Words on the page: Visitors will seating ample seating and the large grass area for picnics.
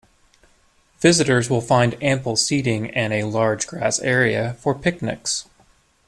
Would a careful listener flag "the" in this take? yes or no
yes